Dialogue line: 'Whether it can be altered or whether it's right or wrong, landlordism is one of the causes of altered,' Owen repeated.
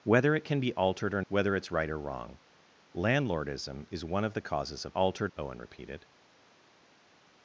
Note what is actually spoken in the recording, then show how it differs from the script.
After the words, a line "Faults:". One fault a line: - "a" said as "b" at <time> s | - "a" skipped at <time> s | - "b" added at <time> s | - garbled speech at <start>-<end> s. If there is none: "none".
'Whether it can be altered or whether it's right or wrong, landlordism is one of the causes of altered,' Owen repeated.
Faults:
none